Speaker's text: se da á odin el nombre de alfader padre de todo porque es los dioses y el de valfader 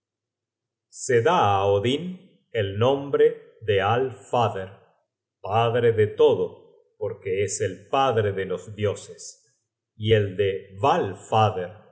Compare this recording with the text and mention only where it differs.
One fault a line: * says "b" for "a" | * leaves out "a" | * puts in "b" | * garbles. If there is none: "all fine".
* puts in "el padre de"